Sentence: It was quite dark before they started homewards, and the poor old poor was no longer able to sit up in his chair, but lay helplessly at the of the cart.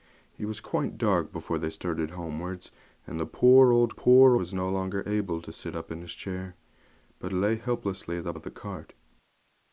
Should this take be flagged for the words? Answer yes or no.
no